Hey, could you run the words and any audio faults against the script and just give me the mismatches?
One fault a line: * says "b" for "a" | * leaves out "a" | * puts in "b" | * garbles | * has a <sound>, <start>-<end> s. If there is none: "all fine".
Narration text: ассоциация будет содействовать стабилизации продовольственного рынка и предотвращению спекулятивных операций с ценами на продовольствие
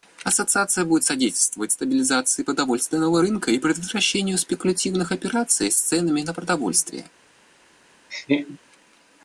* has a laugh, 8.1-8.6 s